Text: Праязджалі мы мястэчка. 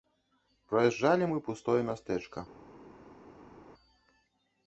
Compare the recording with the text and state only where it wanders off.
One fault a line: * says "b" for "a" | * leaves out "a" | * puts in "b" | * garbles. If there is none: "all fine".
* puts in "пустое"